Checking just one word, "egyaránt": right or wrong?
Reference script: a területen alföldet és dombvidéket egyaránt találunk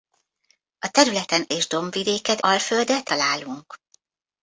wrong